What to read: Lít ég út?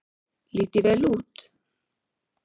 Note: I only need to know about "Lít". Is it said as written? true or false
true